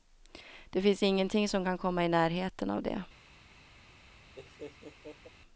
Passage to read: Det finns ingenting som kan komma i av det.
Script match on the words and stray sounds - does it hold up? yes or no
no